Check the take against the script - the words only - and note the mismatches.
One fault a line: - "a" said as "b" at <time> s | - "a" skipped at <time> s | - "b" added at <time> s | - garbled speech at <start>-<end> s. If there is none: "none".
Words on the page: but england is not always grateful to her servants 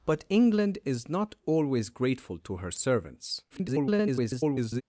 - garbled speech at 3.5-4.8 s